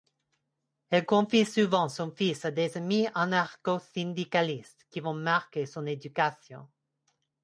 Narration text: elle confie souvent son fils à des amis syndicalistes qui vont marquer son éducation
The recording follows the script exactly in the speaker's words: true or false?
false